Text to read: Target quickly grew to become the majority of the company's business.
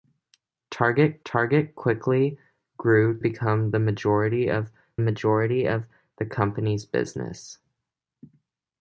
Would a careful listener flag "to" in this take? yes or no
yes